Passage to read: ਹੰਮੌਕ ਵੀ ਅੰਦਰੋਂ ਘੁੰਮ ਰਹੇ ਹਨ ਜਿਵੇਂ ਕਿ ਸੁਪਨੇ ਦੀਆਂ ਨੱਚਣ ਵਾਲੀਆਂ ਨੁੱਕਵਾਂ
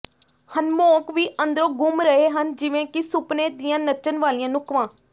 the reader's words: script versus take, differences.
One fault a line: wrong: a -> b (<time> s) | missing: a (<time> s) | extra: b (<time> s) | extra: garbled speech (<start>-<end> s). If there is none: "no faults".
no faults